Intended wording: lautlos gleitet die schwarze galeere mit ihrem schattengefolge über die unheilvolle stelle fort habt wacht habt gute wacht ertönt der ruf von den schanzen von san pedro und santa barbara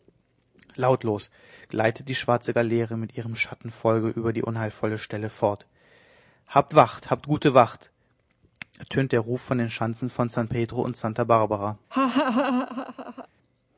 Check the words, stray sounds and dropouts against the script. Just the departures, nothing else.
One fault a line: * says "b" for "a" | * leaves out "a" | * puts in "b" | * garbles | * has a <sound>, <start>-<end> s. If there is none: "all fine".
* has a laugh, 11.9-13.3 s